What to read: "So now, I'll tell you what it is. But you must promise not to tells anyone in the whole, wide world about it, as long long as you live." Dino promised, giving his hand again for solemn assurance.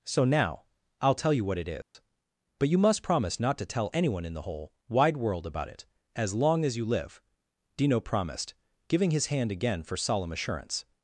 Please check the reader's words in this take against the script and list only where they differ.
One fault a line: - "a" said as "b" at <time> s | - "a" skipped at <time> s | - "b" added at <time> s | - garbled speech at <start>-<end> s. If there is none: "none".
- "tells" said as "tell" at 3.7 s
- "long" skipped at 6.6 s